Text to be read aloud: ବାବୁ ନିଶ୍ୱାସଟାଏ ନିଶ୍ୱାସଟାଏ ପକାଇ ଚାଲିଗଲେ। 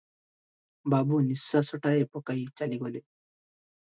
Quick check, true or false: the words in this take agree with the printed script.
false